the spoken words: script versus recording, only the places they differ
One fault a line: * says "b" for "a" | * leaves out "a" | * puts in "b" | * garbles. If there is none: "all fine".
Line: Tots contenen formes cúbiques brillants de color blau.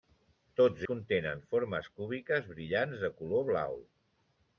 all fine